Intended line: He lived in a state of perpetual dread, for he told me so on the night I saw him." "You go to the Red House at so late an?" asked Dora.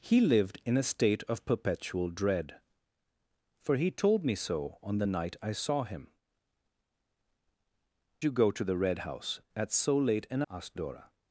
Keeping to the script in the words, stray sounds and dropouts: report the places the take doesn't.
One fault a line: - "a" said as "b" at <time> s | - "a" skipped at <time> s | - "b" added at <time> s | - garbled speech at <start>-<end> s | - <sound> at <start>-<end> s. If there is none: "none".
none